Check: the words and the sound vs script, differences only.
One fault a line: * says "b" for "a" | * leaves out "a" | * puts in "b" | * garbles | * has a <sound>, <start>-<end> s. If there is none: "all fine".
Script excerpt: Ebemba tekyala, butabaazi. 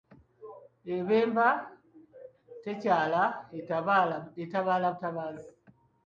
* puts in "etabaala"